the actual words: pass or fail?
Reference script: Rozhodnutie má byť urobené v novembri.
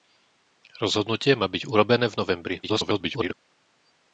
fail